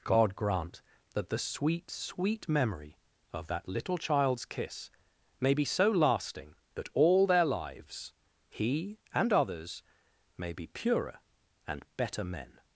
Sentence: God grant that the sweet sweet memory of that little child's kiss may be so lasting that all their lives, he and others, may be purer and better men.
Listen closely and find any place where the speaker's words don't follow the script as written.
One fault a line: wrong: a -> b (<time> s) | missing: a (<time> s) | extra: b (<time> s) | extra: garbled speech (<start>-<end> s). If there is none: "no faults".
no faults